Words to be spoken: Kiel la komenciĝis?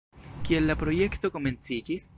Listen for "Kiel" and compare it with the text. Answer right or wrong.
right